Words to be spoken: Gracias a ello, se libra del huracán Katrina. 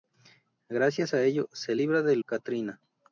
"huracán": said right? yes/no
no